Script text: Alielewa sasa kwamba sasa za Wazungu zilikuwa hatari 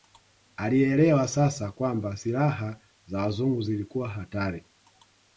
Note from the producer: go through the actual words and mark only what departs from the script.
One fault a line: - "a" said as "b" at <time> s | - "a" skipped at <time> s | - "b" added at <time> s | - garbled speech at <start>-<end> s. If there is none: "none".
- "sasa" said as "silaha" at 2.1 s